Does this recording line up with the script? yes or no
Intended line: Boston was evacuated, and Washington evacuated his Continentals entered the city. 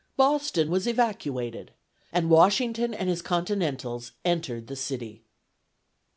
no